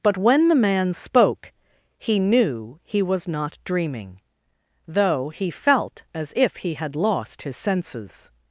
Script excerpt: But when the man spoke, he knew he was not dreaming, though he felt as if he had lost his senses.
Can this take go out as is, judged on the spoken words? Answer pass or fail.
pass